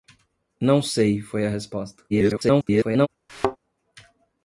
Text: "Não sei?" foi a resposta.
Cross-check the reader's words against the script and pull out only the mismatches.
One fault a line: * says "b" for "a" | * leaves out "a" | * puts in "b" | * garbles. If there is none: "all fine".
* garbles